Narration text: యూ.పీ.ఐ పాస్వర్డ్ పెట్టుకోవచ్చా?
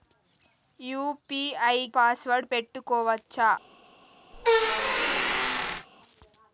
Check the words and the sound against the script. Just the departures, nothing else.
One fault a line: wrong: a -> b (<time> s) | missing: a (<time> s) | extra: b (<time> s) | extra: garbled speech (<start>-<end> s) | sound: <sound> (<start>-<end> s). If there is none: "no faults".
sound: squeak (4.3-5.9 s)